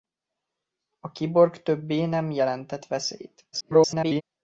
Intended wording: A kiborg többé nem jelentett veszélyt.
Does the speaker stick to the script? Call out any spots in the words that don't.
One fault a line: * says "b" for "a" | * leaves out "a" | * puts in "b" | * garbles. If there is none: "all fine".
* garbles